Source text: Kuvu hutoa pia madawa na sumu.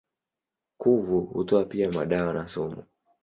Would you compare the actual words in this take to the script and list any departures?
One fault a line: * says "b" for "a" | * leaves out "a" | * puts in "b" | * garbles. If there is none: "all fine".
all fine